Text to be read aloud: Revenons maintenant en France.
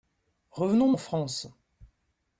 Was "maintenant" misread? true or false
true